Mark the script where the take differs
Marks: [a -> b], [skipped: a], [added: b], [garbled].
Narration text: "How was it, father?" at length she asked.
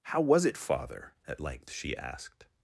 "How was it, father?" at length she asked.